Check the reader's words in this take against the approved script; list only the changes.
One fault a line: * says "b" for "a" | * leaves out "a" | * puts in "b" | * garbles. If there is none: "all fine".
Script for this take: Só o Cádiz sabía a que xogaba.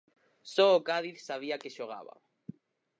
all fine